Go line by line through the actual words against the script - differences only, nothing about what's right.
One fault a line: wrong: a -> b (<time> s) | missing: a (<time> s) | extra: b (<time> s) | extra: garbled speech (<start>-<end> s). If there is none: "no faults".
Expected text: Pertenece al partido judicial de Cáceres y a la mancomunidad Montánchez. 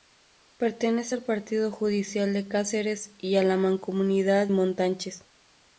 no faults